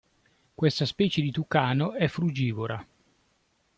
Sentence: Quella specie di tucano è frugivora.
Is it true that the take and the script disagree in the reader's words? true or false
true